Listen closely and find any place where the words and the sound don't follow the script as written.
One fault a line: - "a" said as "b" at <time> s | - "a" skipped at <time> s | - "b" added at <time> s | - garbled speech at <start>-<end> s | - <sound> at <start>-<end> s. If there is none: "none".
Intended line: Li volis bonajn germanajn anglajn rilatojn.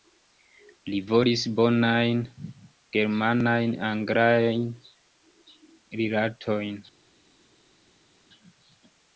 none